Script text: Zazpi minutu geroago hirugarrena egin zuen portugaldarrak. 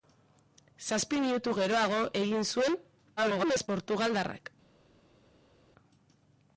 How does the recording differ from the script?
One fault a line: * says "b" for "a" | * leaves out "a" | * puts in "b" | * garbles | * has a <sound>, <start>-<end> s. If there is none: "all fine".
* leaves out "hirugarrena"
* garbles